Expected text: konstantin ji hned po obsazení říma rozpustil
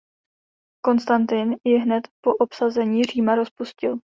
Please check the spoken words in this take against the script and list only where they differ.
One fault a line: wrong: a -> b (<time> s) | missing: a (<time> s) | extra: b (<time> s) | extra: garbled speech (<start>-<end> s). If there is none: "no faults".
no faults